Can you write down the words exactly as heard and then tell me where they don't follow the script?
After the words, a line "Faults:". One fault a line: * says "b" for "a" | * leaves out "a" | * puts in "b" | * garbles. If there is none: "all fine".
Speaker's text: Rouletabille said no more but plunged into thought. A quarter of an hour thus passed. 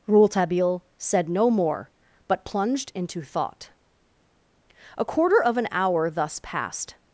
Rouletabille said no more but plunged into thought. A quarter of an hour thus passed.
Faults:
all fine